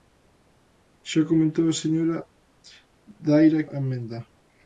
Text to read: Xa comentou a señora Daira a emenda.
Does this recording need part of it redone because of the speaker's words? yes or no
no